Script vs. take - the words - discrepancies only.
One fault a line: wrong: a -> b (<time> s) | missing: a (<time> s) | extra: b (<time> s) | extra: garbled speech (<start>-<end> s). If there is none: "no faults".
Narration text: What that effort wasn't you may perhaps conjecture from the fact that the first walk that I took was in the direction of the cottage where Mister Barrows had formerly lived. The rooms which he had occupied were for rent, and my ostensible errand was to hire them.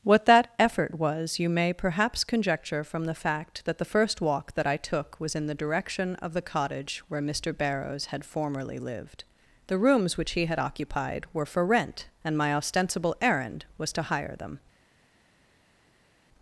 wrong: wasn't -> was (1.0 s)